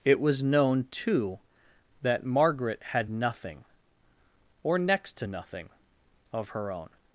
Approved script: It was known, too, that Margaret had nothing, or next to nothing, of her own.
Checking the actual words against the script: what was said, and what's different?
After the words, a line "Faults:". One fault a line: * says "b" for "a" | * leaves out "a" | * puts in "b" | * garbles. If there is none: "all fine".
It was known, too, that Margaret had nothing, or next to nothing, of her own.
Faults:
all fine